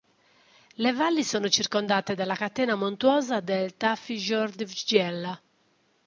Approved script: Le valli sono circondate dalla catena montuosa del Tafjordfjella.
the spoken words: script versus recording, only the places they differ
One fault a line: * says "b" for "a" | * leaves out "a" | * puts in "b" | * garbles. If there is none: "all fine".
all fine